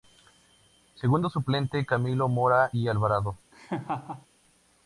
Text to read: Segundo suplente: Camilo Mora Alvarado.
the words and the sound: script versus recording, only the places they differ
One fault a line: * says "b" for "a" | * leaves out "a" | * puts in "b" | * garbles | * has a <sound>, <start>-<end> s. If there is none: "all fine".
* puts in "y"
* has a laugh, 3.5-4.3 s